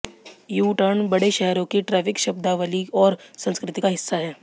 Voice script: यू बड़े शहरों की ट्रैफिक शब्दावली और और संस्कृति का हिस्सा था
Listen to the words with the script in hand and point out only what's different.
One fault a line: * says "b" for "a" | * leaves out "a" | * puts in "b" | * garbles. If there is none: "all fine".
* puts in "टर्न"
* leaves out "और"
* says "है" for "था"